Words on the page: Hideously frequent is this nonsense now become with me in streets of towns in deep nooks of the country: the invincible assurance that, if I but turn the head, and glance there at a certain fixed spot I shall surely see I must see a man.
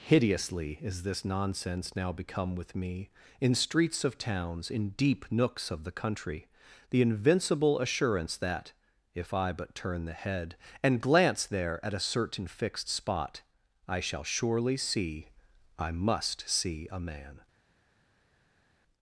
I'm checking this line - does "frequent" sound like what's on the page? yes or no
no